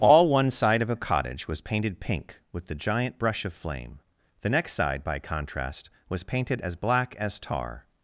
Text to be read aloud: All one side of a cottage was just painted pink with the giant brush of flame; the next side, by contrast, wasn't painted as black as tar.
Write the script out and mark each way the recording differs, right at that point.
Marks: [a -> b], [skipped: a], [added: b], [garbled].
All one side of a cottage was [skipped: just] painted pink with the giant brush of flame; the next side, by contrast, [wasn't -> was] painted as black as tar.